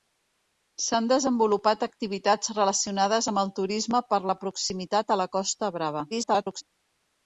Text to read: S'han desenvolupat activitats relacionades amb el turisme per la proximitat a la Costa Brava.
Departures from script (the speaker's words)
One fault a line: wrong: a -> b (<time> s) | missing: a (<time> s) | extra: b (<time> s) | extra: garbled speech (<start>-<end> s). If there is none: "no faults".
extra: garbled speech (6.1-6.6 s)